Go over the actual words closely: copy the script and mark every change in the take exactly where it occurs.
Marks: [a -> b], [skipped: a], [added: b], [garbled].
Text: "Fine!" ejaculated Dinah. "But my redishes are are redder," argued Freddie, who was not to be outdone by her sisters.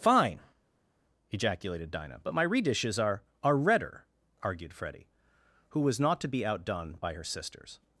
"Fine!" ejaculated Dinah. "But my redishes are are redder," argued Freddie, who was not to be outdone by her sisters.